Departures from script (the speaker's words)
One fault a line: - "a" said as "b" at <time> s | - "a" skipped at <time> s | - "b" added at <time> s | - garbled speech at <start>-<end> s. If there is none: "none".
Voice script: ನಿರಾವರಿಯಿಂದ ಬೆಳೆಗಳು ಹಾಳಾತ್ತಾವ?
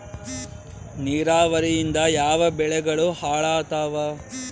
- "ಯಾವ" added at 2.1 s